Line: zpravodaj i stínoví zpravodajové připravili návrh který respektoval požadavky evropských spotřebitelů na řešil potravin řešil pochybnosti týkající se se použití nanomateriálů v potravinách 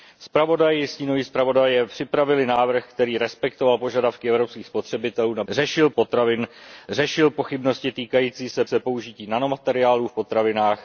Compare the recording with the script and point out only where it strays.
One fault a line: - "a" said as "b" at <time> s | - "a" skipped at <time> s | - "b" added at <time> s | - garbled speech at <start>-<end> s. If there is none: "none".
none